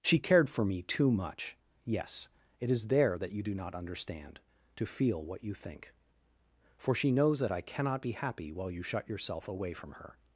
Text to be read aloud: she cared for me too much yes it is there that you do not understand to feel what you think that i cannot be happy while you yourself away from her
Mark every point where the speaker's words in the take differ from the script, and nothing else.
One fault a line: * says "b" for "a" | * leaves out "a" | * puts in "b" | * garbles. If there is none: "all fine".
* puts in "for she knows"
* puts in "shut"